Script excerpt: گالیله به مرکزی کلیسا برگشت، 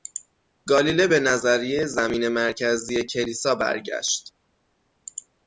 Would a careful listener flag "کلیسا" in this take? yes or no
no